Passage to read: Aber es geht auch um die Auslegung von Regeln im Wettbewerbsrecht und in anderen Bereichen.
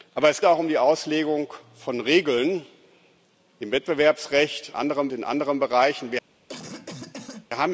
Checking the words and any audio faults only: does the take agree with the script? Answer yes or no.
no